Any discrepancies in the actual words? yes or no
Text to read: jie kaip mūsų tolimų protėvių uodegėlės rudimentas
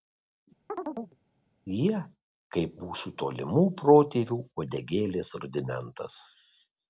no